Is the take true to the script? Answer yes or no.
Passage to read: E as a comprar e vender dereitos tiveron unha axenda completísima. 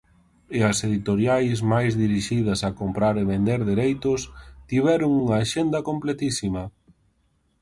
no